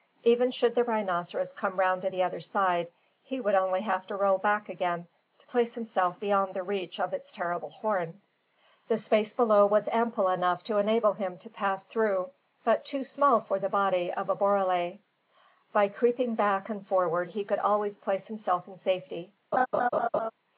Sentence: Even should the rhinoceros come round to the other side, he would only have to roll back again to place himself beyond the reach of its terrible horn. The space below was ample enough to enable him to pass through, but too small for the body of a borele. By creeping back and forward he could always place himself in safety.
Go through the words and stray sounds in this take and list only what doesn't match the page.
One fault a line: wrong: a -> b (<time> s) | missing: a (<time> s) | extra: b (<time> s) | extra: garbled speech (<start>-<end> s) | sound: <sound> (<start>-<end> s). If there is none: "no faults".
sound: laugh (19.5-20.3 s)